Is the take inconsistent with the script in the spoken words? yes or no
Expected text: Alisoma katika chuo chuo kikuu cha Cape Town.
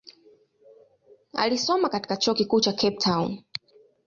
yes